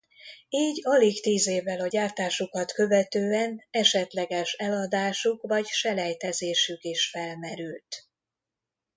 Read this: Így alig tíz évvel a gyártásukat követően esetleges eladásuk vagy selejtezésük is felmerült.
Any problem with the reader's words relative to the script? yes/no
no